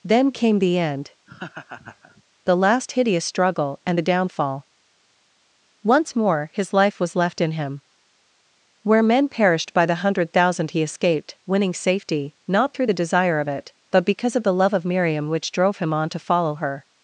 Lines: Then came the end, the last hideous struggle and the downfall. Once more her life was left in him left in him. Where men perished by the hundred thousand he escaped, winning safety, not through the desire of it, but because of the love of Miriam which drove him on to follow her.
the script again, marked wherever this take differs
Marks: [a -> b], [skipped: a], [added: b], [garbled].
Then came the end, the last hideous struggle and the downfall. Once more [her -> his] life was left in him [skipped: left in him.] Where men perished by the hundred thousand he escaped, winning safety, not through the desire of it, but because of the love of Miriam which drove him on to follow her.